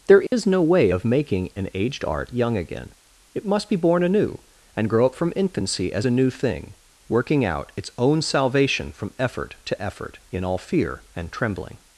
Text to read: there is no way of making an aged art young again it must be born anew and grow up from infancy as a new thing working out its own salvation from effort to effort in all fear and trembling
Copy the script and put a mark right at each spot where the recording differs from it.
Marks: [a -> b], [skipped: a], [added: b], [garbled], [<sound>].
there is [dropout] no way of making an aged art young again it must be born anew and grow up from infancy as a new thing working out its own salvation from effort to effort in all fear and trembling